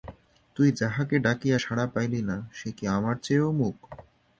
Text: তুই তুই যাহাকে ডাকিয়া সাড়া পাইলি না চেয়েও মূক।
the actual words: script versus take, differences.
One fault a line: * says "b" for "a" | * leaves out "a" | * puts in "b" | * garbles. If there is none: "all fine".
* leaves out "তুই"
* puts in "সে কি আমার"